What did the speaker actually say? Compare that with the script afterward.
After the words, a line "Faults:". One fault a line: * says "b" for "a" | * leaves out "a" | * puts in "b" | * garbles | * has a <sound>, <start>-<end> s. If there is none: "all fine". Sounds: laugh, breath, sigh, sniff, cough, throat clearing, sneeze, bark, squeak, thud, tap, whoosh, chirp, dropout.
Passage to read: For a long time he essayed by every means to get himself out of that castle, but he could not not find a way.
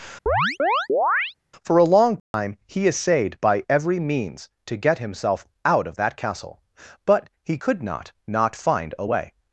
For a long time he essayed by every means to get himself out of that castle, but he could not not find a way.
Faults:
* has a chirp, 0.3-1.3 s
* has a dropout, 2.2-2.3 s